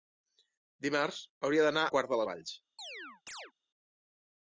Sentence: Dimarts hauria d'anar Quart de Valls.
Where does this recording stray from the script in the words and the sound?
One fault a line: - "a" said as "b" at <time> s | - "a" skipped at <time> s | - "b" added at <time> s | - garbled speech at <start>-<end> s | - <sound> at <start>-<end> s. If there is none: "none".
- chirp at 2.8-3.5 s